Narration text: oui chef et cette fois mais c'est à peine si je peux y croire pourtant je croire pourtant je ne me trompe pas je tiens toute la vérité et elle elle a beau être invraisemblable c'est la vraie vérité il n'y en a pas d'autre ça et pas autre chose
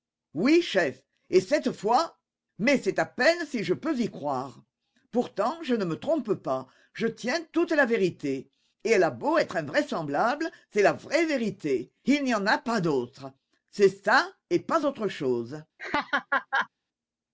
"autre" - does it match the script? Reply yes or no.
yes